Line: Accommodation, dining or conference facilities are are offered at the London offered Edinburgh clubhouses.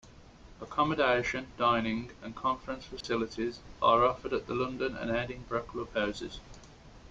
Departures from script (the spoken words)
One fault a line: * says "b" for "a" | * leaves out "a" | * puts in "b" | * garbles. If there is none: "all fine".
* says "and" for "or"
* leaves out "are"
* says "and" for "offered"